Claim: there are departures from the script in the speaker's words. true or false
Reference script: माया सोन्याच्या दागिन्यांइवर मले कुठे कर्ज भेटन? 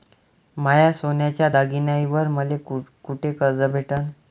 false